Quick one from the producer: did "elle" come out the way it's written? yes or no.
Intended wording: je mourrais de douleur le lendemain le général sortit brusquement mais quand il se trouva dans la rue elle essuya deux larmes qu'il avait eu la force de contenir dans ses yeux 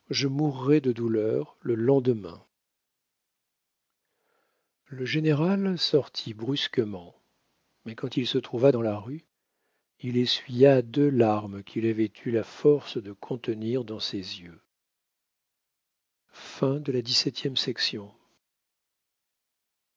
no